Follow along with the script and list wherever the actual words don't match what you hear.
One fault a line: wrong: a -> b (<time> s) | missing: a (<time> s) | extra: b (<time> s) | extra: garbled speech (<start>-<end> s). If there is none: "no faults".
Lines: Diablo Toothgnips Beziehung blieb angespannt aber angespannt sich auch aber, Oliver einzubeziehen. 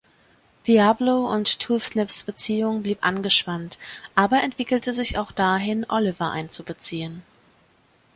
extra: und (1.3 s)
wrong: angespannt -> entwickelte (4.4 s)
wrong: aber -> dahin (5.3 s)